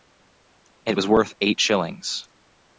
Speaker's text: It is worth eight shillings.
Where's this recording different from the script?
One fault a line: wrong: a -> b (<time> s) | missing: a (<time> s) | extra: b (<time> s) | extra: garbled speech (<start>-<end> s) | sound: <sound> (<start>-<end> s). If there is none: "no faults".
wrong: is -> was (0.9 s)